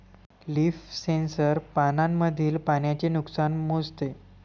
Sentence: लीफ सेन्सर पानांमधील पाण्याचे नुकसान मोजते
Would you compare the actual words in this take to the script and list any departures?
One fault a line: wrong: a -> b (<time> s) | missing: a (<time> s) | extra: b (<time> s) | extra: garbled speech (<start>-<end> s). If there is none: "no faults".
no faults